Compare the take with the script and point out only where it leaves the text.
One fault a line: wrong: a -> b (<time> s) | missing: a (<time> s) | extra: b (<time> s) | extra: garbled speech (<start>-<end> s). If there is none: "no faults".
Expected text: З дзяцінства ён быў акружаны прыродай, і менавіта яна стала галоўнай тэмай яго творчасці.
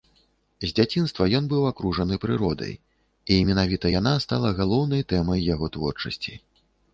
no faults